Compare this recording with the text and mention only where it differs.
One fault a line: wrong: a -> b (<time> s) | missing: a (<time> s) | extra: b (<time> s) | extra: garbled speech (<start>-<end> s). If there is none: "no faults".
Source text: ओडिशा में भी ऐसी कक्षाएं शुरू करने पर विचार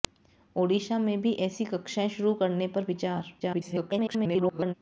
extra: garbled speech (3.4-4.7 s)